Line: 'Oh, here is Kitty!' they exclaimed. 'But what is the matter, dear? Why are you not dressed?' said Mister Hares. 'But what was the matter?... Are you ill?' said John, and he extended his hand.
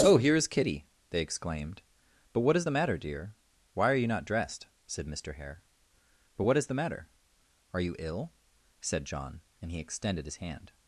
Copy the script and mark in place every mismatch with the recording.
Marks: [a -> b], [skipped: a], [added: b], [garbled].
'Oh, here is Kitty!' they exclaimed. 'But what is the matter, dear? Why are you not dressed?' said Mister [Hares. -> Hare] 'But what [was -> is] the matter?... Are you ill?' said John, and he extended his hand.